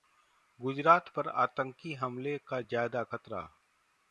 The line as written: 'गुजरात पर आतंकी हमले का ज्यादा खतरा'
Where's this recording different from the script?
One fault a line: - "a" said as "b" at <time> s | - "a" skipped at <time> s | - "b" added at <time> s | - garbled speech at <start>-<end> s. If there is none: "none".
none